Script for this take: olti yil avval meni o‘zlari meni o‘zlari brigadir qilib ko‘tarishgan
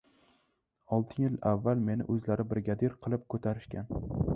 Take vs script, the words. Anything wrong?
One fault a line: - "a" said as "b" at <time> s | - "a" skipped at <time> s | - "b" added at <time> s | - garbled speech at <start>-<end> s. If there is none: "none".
- "meni o‘zlari" skipped at 2.5 s